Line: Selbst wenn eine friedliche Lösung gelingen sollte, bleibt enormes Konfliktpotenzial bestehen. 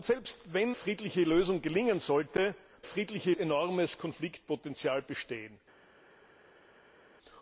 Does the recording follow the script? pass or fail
fail